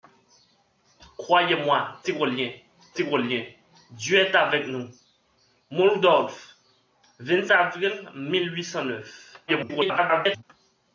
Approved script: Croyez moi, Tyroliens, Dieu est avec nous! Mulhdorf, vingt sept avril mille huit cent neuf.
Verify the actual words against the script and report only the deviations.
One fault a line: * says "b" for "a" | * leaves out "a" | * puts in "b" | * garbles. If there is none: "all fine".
* puts in "Tyroliens"
* leaves out "sept"
* garbles